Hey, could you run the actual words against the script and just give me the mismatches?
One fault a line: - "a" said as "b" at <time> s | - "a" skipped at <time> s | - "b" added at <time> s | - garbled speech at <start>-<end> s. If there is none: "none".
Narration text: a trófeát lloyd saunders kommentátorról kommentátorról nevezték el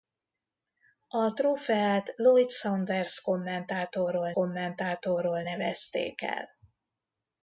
none